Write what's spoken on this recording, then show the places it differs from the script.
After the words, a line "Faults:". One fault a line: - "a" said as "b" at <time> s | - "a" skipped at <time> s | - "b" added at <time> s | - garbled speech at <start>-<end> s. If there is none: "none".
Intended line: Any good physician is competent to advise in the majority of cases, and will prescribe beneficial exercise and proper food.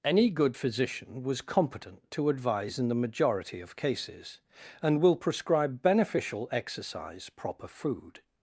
Any good physician was competent to advise in the majority of cases, and will prescribe beneficial exercise proper food.
Faults:
- "is" said as "was" at 1.2 s
- "and" skipped at 7.3 s